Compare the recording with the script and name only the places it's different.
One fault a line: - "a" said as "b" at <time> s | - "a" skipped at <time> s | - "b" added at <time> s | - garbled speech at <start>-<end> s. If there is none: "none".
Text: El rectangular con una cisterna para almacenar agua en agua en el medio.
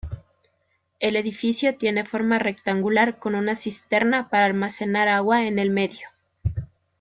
- "edificio tiene forma" added at 1.1 s
- "agua en" skipped at 5.6 s